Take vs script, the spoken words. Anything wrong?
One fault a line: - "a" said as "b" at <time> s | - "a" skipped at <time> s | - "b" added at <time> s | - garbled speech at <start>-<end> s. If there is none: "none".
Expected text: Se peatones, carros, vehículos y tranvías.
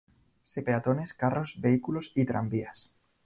none